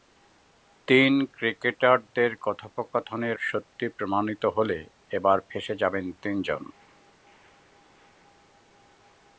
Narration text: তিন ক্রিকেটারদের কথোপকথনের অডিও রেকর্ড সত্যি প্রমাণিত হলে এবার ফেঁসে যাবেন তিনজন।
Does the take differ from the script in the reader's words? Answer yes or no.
yes